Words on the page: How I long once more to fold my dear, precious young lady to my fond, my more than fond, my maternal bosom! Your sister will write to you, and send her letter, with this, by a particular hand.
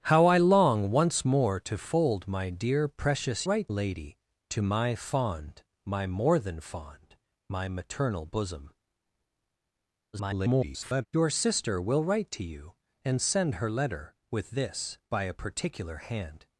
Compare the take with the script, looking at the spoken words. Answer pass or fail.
fail